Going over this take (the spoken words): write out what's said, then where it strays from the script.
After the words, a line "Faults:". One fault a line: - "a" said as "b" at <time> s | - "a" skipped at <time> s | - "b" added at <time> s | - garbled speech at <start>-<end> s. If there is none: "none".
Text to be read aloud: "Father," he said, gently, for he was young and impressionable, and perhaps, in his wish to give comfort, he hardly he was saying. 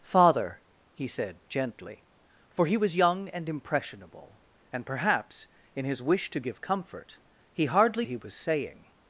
"Father," he said, gently, for he was young and impressionable, and perhaps, in his wish to give comfort, he hardly he was saying.
Faults:
none